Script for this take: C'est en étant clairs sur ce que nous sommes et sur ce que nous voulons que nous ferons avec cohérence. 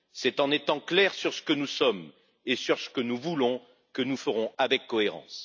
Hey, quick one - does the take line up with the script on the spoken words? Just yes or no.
yes